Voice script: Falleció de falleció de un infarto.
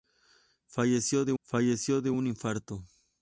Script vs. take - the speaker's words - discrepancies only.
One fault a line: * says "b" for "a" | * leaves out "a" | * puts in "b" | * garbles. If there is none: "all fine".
all fine